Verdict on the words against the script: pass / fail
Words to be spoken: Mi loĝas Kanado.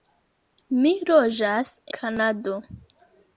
pass